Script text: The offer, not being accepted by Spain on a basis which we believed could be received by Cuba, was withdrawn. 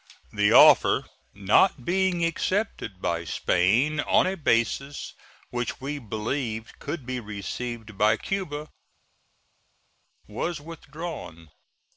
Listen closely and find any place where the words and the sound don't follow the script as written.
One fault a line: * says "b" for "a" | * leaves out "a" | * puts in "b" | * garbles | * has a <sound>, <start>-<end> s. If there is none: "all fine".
all fine